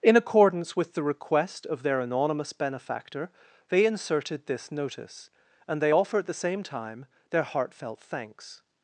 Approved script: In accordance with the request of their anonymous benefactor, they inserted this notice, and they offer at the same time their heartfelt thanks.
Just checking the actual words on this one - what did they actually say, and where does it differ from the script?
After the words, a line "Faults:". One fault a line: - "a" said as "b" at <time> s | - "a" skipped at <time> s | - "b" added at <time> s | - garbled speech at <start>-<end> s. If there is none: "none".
In accordance with the request of their anonymous benefactor, they inserted this notice, and they offer at the same time their heartfelt thanks.
Faults:
none